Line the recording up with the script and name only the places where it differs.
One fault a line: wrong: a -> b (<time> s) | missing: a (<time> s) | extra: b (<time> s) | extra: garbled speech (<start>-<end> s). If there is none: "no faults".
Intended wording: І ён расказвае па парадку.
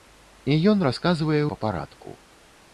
no faults